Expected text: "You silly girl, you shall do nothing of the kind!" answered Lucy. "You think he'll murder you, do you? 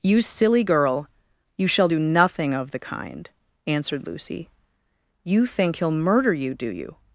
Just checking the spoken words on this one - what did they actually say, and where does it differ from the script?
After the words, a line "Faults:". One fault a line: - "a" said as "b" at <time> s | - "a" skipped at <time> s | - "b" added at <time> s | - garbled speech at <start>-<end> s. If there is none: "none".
"You silly girl, you shall do nothing of the kind!" answered Lucy. "You think he'll murder you, do you?
Faults:
none